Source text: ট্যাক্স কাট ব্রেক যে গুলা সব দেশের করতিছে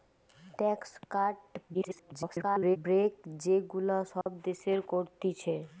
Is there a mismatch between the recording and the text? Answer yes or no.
yes